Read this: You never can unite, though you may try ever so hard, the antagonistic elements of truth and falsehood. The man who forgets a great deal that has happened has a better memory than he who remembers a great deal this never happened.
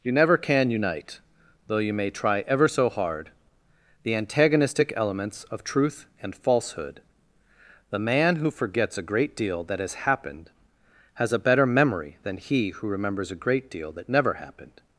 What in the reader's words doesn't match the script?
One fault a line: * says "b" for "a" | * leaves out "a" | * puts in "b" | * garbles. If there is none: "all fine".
* says "that" for "this"